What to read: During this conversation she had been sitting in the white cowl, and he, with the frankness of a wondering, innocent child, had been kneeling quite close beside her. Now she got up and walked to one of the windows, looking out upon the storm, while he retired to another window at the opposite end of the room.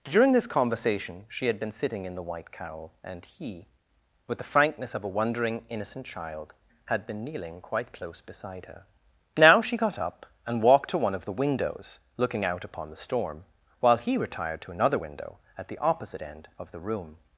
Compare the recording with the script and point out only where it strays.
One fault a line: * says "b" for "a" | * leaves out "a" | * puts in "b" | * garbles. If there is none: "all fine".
all fine